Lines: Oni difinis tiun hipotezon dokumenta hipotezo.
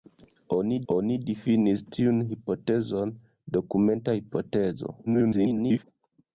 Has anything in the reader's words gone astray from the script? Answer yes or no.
yes